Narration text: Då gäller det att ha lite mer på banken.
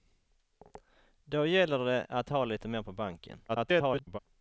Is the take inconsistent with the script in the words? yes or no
yes